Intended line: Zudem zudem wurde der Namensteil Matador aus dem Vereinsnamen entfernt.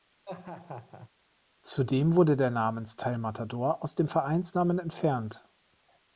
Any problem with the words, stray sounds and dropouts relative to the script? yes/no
yes